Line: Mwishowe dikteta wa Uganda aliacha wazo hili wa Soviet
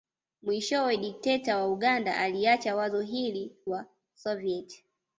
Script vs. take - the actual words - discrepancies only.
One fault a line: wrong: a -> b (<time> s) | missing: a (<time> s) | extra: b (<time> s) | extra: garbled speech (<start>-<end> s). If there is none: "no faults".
no faults